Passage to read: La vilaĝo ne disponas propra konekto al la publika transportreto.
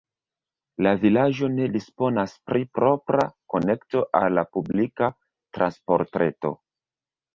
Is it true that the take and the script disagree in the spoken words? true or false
true